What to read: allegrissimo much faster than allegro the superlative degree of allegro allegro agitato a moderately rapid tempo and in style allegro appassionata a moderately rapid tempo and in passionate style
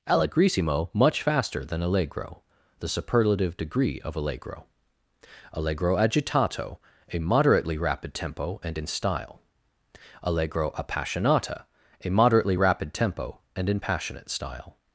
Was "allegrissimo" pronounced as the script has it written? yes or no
yes